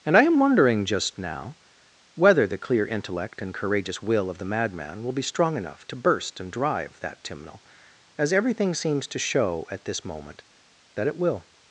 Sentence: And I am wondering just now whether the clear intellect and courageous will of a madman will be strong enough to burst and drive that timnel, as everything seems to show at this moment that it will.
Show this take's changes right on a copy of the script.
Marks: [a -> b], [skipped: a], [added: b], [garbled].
And I am wondering just now whether the clear intellect and courageous will of [a -> the] madman will be strong enough to burst and drive that timnel, as everything seems to show at this moment that it will.